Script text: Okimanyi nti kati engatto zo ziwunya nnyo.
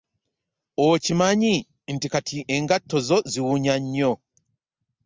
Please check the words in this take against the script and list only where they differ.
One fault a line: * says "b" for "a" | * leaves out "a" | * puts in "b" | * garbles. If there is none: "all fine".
all fine